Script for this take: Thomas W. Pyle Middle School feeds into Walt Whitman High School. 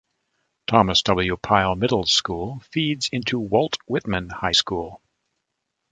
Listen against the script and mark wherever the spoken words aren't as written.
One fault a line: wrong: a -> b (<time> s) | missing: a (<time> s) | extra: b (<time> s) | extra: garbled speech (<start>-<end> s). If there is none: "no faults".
no faults